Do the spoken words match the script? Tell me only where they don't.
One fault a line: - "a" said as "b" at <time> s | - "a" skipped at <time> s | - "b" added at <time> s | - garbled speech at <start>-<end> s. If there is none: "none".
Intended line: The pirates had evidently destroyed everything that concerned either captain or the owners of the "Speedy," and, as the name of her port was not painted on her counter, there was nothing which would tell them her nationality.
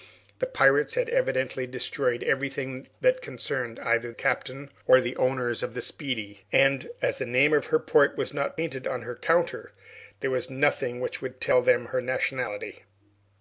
none